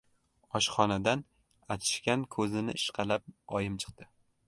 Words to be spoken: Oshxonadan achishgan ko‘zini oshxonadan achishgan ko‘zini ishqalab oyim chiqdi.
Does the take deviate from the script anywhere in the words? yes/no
yes